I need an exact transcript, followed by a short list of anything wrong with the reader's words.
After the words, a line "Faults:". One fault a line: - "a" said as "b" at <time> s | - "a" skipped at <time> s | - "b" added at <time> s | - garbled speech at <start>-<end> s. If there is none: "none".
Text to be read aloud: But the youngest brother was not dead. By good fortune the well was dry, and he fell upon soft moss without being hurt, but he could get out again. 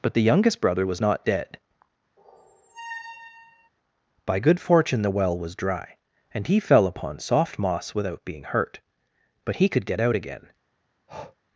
But the youngest brother was not dead. By good fortune the well was dry, and he fell upon soft moss without being hurt, but he could get out again.
Faults:
none